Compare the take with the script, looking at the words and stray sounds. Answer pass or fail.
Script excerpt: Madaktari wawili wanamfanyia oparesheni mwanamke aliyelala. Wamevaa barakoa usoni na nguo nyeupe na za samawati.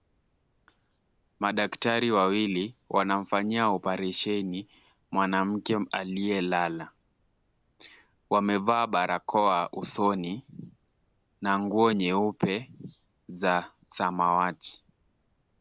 fail